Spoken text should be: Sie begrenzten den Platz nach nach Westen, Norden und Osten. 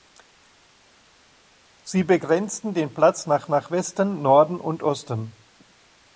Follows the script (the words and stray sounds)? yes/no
yes